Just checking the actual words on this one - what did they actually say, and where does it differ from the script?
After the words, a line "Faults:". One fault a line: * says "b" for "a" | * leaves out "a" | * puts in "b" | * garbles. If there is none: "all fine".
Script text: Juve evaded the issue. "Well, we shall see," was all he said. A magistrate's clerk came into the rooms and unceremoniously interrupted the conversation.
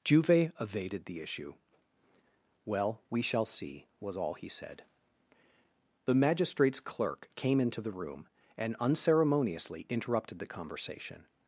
Juve evaded the issue. "Well, we shall see," was all he said. The magistrate's clerk came into the room and unceremoniously interrupted the conversation.
Faults:
* says "The" for "A"
* says "room" for "rooms"